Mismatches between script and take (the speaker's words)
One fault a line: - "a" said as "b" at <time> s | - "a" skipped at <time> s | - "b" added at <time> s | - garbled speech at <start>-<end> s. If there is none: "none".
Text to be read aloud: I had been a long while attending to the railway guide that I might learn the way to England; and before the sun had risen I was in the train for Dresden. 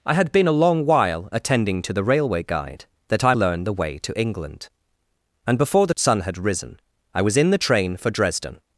- "might" skipped at 3.3 s